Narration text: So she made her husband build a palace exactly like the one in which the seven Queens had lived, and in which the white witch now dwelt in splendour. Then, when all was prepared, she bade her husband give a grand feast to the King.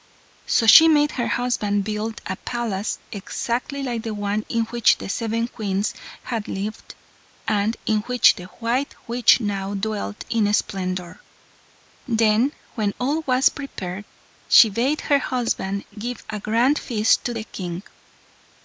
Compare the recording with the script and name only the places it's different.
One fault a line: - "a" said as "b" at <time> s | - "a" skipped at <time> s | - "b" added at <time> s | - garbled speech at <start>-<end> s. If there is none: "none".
none